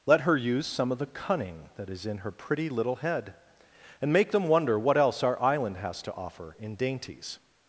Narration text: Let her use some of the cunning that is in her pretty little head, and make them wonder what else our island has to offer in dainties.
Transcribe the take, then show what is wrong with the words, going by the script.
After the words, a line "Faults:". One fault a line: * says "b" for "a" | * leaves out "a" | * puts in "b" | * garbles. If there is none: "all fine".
Let her use some of the cunning that is in her pretty little head, and make them wonder what else our island has to offer in dainties.
Faults:
all fine